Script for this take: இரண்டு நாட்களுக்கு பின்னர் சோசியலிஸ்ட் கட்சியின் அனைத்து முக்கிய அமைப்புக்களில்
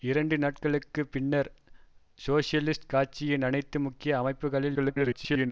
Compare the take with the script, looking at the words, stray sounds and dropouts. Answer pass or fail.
fail